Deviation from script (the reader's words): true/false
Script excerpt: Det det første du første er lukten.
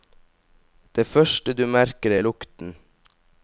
true